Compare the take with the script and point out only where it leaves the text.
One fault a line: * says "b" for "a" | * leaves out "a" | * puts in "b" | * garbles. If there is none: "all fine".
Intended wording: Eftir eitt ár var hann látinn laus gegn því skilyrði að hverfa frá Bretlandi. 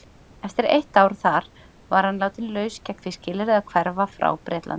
* puts in "þar"